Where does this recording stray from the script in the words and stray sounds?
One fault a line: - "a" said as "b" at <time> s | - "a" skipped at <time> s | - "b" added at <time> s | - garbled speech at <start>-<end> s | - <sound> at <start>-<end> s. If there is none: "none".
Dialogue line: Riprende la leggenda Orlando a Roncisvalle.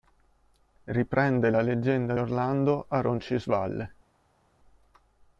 none